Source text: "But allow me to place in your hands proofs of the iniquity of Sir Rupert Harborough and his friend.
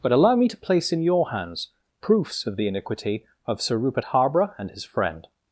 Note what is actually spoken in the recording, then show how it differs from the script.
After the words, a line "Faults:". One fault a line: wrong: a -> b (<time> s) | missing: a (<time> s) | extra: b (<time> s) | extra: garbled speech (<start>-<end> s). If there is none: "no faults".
"But allow me to place in your hands proofs of the iniquity of Sir Rupert Harborough and his friend.
Faults:
no faults